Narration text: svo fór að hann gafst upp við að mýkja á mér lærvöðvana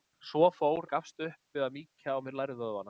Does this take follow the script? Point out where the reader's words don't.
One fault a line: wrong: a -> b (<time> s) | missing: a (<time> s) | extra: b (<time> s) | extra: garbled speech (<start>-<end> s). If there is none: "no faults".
missing: að hann (0.9 s)